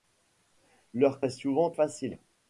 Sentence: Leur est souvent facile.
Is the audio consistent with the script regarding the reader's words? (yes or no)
yes